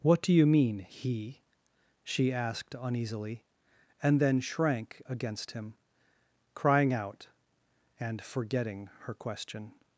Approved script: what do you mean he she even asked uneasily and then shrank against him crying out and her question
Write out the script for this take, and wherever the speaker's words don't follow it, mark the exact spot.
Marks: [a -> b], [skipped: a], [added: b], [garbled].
what do you mean he she [skipped: even] asked uneasily and then shrank against him crying out and [added: forgetting] her question